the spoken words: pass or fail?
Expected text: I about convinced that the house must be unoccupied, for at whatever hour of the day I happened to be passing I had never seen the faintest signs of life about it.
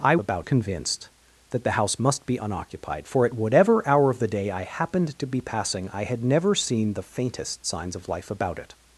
pass